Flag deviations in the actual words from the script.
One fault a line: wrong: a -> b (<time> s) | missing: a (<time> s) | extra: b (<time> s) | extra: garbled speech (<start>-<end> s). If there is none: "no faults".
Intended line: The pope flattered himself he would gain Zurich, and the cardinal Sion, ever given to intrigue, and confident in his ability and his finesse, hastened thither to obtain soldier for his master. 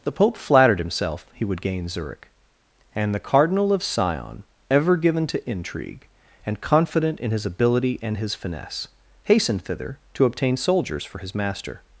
extra: of (3.7 s)
wrong: soldier -> soldiers (10.6 s)